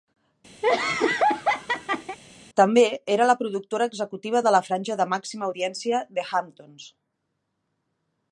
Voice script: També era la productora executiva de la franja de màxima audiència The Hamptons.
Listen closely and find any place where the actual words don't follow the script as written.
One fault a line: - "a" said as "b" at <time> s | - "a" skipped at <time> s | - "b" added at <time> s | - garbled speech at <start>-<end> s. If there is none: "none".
none